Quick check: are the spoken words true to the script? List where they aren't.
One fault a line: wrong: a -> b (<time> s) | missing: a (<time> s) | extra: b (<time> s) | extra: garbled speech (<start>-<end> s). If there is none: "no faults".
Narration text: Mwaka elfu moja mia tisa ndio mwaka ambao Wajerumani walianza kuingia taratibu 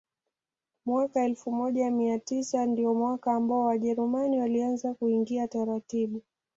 no faults